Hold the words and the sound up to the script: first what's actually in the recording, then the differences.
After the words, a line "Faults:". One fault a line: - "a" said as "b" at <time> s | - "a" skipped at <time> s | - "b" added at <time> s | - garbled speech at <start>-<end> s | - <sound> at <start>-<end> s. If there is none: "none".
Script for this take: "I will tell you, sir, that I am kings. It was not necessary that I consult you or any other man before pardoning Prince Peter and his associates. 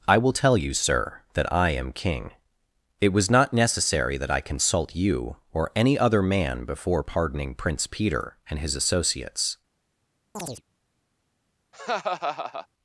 "I will tell you, sir, that I am king. It was not necessary that I consult you or any other man before pardoning Prince Peter and his associates.
Faults:
- "kings" said as "king" at 1.9 s
- chirp at 10.3-10.6 s
- laugh at 11.7-12.7 s